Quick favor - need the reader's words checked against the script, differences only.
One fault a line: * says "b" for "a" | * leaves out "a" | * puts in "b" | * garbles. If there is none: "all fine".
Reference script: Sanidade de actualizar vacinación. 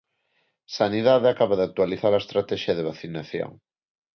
* puts in "acaba"
* puts in "a estratexia de"